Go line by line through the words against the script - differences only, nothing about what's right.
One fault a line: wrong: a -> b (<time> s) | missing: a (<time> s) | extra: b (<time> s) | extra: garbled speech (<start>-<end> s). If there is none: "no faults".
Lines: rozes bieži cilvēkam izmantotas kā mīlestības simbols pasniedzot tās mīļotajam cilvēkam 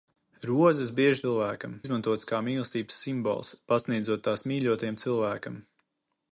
no faults